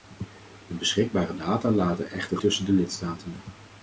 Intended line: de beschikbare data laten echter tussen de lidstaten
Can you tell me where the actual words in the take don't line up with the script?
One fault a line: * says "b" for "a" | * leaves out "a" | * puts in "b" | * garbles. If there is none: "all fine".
all fine